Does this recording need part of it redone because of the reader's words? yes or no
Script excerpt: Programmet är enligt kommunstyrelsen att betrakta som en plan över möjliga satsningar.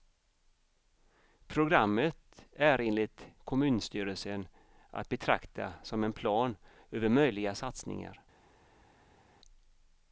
no